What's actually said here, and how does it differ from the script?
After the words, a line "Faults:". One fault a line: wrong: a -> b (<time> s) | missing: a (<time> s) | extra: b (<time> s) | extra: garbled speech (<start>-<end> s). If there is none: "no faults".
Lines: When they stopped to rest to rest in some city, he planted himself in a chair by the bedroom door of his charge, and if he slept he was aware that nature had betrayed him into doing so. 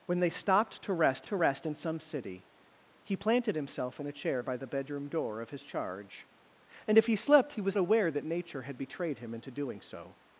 When they stopped to rest to rest in some city, he planted himself in a chair by the bedroom door of his charge, and if he slept he was aware that nature had betrayed him into doing so.
Faults:
no faults